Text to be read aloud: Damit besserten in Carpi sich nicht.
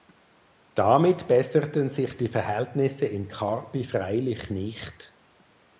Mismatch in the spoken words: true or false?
true